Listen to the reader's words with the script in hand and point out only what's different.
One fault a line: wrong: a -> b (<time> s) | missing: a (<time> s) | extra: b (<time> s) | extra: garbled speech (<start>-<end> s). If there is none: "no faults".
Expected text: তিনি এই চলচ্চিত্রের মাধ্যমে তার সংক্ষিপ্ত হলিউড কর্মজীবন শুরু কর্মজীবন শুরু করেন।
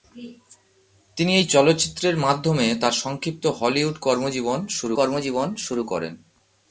no faults